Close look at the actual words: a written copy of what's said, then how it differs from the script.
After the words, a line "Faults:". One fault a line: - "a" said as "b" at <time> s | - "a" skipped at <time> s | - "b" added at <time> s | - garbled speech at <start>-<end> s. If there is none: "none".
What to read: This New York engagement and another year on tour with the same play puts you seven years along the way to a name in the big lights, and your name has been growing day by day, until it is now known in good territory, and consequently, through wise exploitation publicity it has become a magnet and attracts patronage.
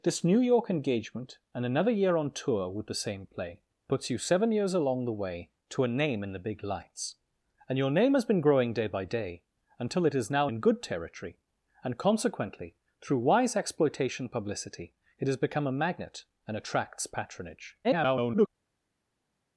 This New York engagement and another year on tour with the same play puts you seven years along the way to a name in the big lights, and your name has been growing day by day, until it is now in good territory, and consequently, through wise exploitation publicity it has become a magnet and attracts patronage. [garbled]
Faults:
- "known" skipped at 10.5 s
- garbled speech at 17.8-18.5 s